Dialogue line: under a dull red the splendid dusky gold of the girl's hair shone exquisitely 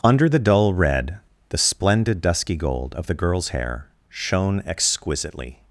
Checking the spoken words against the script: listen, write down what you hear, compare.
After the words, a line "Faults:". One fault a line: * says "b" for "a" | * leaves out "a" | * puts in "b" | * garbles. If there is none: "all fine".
under the dull red the splendid dusky gold of the girl's hair shone exquisitely
Faults:
* says "the" for "a"